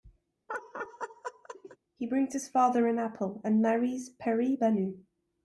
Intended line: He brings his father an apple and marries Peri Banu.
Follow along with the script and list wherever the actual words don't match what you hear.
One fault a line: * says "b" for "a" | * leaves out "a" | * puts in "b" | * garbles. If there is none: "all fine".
all fine